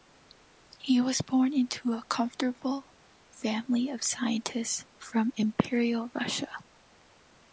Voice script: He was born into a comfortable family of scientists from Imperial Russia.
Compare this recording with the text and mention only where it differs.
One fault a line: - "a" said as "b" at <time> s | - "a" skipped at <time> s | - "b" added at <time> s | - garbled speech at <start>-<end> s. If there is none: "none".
none